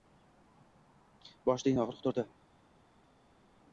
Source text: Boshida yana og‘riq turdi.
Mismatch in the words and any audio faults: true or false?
false